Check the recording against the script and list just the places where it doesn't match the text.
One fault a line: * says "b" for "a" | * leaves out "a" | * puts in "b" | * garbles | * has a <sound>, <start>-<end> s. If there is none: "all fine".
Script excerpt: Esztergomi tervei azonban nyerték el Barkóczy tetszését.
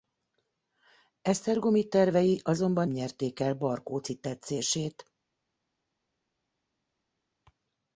all fine